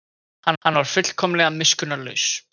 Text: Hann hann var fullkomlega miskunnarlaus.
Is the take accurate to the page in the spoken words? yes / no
yes